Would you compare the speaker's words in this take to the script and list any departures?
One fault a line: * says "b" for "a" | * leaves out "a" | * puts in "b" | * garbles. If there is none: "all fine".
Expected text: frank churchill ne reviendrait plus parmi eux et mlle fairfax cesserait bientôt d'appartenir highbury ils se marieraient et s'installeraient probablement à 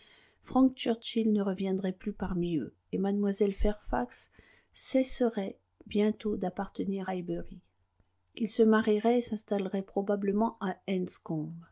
all fine